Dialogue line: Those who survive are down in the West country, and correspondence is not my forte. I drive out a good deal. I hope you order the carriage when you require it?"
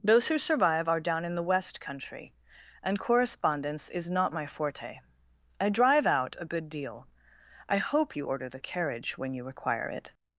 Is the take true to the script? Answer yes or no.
yes